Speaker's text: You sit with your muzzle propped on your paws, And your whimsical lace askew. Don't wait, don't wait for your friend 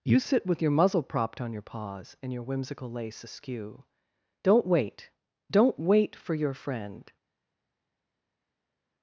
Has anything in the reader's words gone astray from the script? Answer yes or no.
no